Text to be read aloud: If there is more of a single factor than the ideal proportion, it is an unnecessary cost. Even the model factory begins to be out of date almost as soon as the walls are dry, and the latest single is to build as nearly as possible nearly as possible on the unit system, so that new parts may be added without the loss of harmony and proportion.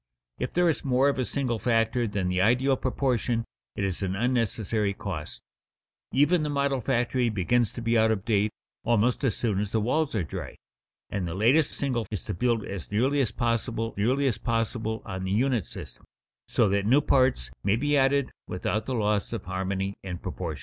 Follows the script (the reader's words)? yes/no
yes